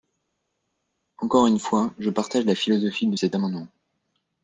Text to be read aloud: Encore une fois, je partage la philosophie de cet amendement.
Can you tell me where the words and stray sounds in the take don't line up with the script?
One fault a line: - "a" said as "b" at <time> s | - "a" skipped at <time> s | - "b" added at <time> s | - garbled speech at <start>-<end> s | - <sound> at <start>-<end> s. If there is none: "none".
none